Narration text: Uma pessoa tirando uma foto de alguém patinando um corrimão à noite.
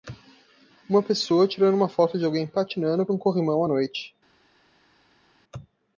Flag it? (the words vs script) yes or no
no